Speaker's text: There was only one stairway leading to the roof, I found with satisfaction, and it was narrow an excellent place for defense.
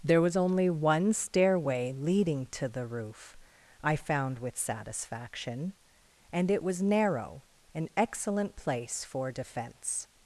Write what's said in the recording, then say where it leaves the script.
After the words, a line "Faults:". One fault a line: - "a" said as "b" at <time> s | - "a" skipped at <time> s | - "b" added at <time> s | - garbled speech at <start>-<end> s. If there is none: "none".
There was only one stairway leading to the roof, I found with satisfaction, and it was narrow an excellent place for defense.
Faults:
none